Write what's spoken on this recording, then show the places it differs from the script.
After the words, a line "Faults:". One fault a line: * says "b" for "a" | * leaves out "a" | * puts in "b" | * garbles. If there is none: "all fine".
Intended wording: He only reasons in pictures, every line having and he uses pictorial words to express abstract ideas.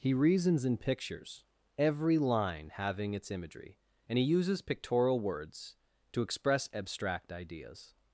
He reasons in pictures, every line having its imagery, and he uses pictorial words to express abstract ideas.
Faults:
* leaves out "only"
* puts in "its imagery"